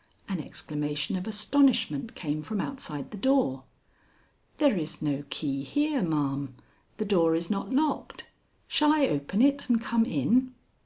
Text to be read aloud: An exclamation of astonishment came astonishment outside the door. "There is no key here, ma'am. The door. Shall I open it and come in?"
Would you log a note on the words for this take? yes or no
yes